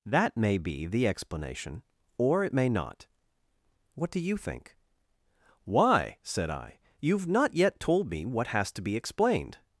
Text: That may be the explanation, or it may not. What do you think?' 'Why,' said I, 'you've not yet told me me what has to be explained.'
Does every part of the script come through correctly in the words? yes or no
no